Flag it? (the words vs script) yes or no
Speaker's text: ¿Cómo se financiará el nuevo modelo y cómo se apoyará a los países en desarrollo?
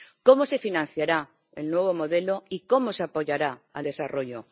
yes